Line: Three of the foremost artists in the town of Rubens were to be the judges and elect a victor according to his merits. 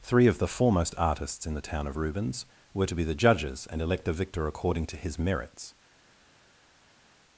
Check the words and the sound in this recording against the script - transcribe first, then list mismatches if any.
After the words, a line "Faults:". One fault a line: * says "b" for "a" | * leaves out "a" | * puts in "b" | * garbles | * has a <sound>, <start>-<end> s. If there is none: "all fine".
Three of the foremost artists in the town of Rubens were to be the judges and elect a victor according to his merits.
Faults:
all fine